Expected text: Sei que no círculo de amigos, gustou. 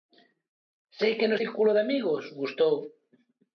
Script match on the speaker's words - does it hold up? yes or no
yes